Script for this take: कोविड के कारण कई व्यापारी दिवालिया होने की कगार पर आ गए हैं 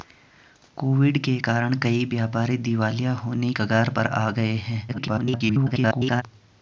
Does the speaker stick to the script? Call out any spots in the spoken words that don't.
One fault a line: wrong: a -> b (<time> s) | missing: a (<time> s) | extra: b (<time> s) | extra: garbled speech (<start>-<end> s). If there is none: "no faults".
missing: की (3.5 s)
extra: garbled speech (4.9-6.2 s)